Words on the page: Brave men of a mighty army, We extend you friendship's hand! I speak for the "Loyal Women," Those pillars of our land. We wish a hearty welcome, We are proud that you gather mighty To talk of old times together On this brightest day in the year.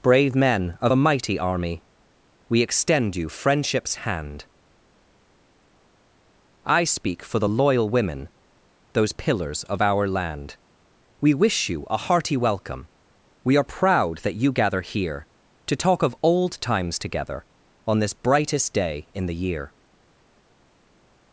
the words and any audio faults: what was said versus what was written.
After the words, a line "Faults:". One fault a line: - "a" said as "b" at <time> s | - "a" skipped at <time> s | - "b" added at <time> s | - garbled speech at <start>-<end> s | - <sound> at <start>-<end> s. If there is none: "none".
Brave men of a mighty army, We extend you friendship's hand! I speak for the "Loyal Women," Those pillars of our land. We wish you a hearty welcome, We are proud that you gather here To talk of old times together On this brightest day in the year.
Faults:
- "you" added at 11.7 s
- "mighty" said as "here" at 14.8 s